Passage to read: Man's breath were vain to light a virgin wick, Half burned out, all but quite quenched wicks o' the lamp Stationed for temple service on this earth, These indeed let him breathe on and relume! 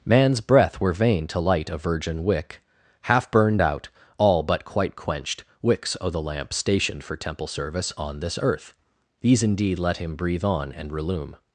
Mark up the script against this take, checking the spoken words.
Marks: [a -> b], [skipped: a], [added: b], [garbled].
Man's breath were vain to light a virgin wick, Half burned out, all but quite quenched wicks o' the lamp Stationed for temple service on this earth, These indeed let him breathe on and relume!